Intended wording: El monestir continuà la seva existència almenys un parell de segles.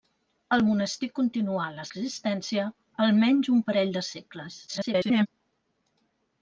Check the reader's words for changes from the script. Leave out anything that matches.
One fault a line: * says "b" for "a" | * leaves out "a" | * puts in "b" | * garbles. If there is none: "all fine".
* leaves out "seva"
* garbles